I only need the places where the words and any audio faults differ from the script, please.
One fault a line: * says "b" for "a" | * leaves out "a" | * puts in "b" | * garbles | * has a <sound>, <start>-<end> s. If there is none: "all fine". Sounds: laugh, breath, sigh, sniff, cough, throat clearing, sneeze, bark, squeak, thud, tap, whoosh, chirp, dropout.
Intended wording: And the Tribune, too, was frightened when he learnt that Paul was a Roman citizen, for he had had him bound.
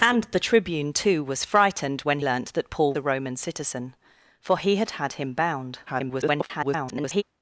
* leaves out "he"
* leaves out "was"
* garbles